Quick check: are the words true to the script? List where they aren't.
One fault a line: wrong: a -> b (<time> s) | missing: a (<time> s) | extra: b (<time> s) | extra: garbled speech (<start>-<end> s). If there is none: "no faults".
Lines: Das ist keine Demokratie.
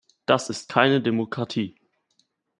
no faults